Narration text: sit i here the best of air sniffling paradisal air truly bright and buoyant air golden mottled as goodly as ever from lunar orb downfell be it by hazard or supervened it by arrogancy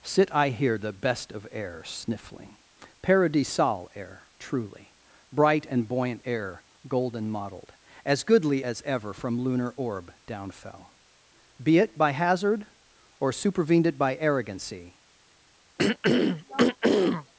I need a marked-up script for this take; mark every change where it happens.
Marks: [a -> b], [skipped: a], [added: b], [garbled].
sit i here the best of air sniffling paradisal air truly bright and buoyant air golden mottled as goodly as ever from lunar orb downfell be it by hazard or supervened it by arrogancy